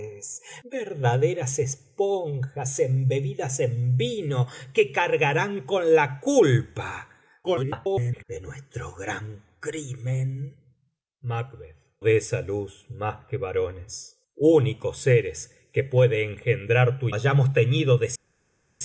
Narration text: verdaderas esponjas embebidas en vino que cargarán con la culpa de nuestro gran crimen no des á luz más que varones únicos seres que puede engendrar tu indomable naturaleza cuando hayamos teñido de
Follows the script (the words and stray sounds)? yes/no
no